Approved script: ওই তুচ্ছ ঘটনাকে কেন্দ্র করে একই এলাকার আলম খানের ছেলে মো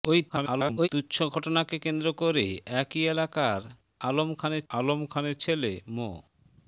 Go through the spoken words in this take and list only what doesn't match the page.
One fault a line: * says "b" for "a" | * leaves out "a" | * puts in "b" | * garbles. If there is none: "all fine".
* garbles
* puts in "আলম খানের"